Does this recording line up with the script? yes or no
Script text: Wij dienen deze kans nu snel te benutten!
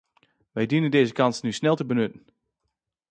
yes